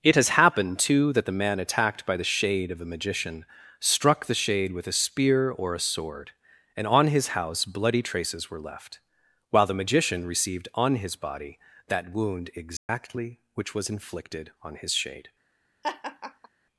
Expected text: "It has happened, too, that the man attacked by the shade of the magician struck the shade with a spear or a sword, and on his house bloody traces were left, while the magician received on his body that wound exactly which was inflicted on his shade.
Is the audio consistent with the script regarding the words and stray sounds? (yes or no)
no